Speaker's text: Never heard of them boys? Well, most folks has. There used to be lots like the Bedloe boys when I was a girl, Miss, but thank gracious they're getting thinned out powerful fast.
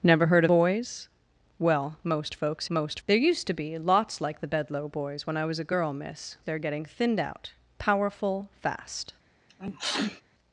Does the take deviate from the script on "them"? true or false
true